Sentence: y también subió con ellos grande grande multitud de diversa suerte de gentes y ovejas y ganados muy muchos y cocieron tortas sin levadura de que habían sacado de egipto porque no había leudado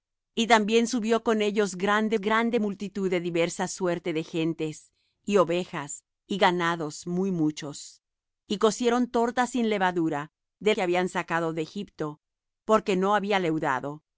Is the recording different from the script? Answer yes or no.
no